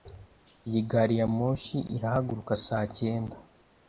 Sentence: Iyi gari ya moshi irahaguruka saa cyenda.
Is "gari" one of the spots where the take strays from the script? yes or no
no